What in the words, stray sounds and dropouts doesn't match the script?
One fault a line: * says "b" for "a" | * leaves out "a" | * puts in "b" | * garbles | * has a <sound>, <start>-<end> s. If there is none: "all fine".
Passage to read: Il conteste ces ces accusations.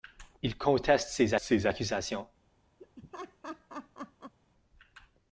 * has a laugh, 2.8-4.3 s